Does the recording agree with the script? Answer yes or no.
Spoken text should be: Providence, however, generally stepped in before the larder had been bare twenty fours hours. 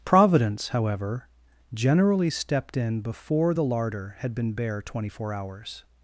no